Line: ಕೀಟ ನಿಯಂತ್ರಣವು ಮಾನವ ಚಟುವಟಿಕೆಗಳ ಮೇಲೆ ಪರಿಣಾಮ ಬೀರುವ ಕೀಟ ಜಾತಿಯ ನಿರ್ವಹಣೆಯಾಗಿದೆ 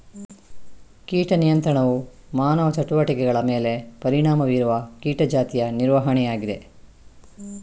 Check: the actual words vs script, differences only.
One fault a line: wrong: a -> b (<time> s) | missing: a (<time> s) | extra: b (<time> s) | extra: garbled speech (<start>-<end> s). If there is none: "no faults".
no faults